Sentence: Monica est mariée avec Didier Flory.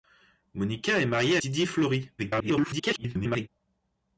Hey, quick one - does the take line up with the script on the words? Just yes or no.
no